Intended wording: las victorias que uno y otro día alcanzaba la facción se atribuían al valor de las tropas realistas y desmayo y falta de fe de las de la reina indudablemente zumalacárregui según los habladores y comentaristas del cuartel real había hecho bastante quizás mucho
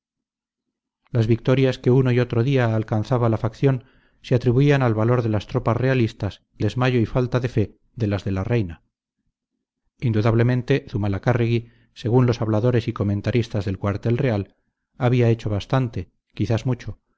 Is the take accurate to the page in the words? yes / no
yes